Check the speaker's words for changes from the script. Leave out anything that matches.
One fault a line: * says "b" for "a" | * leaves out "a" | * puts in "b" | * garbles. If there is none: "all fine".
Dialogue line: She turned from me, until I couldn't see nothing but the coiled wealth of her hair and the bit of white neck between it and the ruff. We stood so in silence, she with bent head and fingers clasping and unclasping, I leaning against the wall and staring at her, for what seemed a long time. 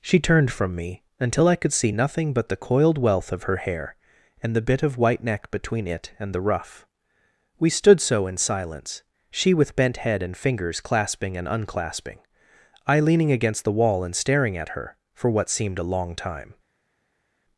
* says "could" for "couldn't"